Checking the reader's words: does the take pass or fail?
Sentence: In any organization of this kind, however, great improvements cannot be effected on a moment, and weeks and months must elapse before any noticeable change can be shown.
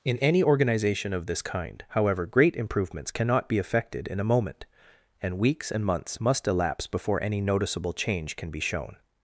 fail